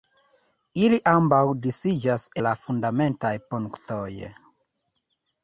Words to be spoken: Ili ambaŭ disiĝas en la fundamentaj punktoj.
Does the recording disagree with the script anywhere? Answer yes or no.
yes